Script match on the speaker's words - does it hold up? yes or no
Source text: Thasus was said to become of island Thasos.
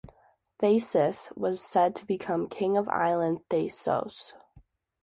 no